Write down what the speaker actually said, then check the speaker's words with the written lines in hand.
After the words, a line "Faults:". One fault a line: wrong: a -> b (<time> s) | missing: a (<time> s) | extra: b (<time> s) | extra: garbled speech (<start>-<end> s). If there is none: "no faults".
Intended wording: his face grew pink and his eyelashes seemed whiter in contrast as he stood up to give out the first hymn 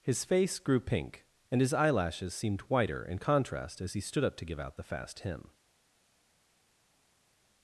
his face grew pink and his eyelashes seemed whiter in contrast as he stood up to give out the fast hymn
Faults:
wrong: first -> fast (4.8 s)